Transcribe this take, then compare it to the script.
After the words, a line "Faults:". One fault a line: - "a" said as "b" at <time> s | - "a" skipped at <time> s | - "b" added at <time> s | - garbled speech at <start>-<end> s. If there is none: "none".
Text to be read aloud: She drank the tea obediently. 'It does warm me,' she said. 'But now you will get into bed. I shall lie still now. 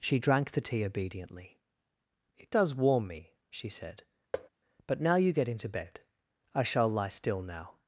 She drank the tea obediently. 'It does warm me,' she said. 'But now you get into bed. I shall lie still now.
Faults:
- "will" skipped at 5.3 s